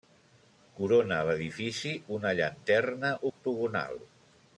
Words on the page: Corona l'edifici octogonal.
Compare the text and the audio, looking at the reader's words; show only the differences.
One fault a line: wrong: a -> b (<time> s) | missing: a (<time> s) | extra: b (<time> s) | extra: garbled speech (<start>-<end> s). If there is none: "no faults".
extra: una llanterna (2.2 s)